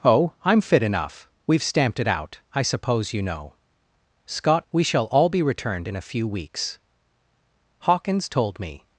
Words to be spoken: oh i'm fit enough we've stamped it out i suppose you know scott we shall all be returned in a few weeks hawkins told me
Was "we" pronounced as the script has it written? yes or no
yes